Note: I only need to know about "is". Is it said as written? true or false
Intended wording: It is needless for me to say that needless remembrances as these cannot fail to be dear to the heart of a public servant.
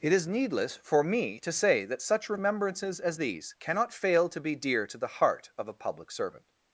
true